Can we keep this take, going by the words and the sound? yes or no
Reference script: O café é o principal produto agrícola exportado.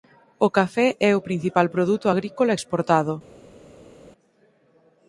yes